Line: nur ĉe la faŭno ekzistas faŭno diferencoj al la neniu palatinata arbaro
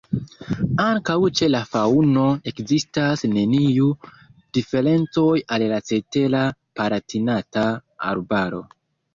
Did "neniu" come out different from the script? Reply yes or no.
yes